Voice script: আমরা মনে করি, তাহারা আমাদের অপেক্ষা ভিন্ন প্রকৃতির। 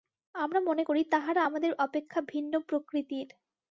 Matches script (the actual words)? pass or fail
pass